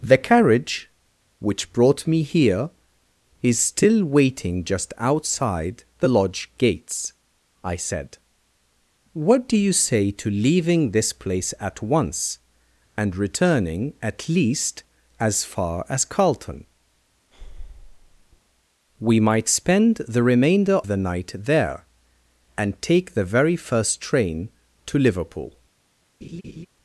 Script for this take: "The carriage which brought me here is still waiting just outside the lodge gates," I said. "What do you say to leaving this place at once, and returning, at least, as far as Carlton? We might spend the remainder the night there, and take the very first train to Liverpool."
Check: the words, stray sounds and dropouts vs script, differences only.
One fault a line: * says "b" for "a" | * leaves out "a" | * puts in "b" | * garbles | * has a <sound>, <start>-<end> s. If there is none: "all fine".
* has a breath, 17.3-18.4 s
* has a laugh, 26.2-26.7 s